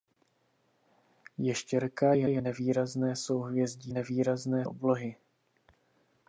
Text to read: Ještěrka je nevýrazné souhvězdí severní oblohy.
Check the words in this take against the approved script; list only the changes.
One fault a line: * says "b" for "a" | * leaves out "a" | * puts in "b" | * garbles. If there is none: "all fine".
* puts in "je"
* says "nevýrazné" for "severní"